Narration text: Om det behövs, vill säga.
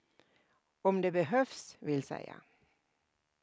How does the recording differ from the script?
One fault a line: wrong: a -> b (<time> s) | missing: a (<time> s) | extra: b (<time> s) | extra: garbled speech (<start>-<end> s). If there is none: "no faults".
no faults